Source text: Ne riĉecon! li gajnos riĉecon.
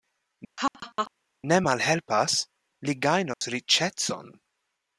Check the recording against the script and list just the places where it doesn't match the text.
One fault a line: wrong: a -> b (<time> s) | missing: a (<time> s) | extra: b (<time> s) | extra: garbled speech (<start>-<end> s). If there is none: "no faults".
wrong: riĉecon -> malhelpas (1.7 s)